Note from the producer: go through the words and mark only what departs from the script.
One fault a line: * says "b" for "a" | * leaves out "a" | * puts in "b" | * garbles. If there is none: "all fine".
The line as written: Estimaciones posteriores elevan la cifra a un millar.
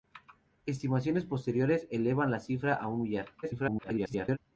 * garbles